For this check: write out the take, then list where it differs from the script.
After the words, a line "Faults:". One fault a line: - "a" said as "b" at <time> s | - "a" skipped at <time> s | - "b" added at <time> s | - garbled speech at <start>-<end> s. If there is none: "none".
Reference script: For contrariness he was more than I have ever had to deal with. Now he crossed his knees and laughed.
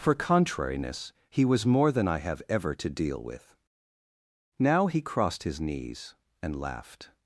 For contrariness he was more than I have ever to deal with. Now he crossed his knees and laughed.
Faults:
- "had" skipped at 2.7 s